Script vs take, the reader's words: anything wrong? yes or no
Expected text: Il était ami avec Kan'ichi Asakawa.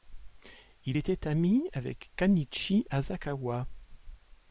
no